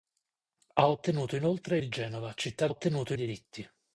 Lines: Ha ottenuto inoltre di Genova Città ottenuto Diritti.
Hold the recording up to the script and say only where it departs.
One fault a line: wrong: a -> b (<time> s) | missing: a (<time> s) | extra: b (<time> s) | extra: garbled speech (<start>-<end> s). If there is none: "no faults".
no faults